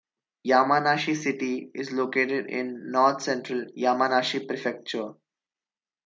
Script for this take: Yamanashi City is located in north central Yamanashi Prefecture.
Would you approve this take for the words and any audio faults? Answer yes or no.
yes